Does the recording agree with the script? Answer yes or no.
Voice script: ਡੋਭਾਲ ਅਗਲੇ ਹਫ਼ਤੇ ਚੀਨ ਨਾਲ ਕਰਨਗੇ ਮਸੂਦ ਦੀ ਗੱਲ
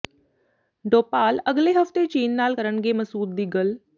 yes